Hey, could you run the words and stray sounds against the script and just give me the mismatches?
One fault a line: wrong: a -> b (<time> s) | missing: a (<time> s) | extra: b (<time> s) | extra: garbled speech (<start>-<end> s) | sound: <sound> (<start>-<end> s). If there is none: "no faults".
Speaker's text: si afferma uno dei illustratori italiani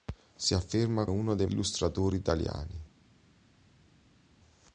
no faults